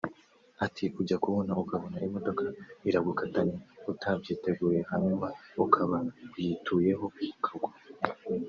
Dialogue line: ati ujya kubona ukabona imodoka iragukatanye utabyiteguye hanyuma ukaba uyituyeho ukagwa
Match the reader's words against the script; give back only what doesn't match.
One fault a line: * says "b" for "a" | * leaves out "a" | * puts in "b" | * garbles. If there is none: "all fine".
all fine